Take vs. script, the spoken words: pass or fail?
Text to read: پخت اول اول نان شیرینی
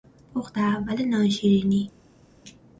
fail